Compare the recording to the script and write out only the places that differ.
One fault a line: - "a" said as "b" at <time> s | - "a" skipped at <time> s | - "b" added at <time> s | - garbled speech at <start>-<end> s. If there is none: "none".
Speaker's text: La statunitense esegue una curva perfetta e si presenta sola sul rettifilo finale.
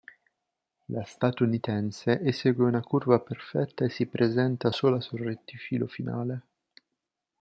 none